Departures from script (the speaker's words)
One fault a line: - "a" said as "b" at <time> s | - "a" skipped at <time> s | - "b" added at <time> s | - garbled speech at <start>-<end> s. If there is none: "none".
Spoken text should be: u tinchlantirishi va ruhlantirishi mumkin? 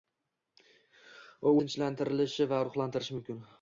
none